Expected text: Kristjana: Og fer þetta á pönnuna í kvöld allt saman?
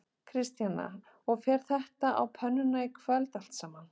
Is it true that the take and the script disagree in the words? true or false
false